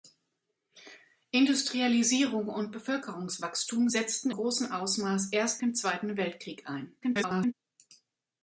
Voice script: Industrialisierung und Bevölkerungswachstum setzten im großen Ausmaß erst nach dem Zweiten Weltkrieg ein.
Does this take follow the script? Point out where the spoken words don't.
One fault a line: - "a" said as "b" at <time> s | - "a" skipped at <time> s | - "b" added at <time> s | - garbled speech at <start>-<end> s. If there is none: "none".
- "im" skipped at 4.3 s
- "nach" skipped at 5.6 s
- garbled speech at 7.0-7.5 s